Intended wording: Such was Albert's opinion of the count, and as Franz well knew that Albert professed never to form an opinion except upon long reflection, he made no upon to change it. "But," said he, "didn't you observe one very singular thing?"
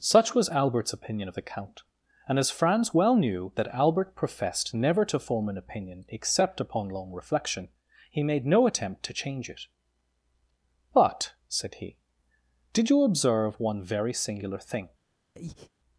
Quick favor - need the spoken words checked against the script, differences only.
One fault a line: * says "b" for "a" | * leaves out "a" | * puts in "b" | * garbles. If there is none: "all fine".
* says "attempt" for "upon"
* says "did" for "didn't"